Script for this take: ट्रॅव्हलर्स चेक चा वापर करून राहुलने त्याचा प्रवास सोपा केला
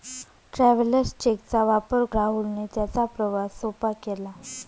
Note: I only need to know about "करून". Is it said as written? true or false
false